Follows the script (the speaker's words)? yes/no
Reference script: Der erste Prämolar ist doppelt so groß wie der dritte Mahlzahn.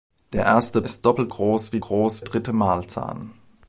no